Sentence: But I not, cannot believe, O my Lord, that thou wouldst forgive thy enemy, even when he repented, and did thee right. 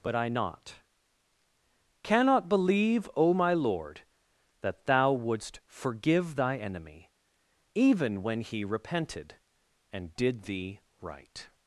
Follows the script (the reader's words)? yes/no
yes